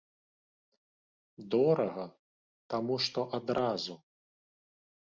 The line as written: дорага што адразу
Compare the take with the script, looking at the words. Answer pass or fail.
fail